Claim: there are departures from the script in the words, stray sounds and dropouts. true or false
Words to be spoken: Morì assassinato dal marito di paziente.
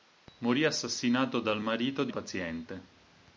false